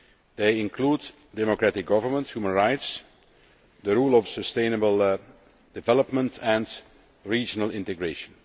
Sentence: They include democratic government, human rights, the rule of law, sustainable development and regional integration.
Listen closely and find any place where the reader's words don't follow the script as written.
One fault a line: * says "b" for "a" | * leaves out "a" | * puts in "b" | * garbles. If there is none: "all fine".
* leaves out "law"